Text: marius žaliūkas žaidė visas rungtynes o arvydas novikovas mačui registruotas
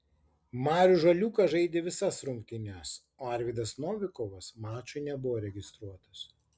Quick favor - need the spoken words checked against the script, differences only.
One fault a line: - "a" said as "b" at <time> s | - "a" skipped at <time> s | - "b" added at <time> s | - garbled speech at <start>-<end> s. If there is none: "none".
- "nebuvo" added at 5.1 s